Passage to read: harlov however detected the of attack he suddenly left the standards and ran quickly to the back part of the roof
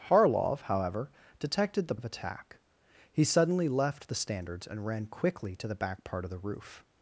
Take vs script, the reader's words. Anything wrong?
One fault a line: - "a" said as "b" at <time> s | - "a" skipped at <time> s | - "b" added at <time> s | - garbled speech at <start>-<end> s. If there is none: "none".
none